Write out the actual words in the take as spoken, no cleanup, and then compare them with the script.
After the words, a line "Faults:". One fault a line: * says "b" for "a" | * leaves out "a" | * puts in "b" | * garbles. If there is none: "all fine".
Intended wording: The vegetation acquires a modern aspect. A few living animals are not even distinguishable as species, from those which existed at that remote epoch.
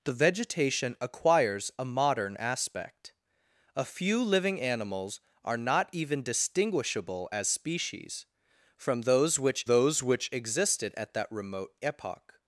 The vegetation acquires a modern aspect. A few living animals are not even distinguishable as species, from those which those which existed at that remote epoch.
Faults:
* puts in "those which"